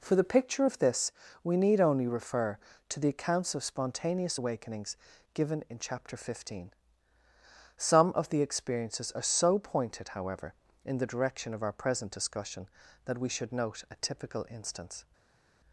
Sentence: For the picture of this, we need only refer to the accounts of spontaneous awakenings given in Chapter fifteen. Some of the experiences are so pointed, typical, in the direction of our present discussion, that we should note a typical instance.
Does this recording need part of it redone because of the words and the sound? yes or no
yes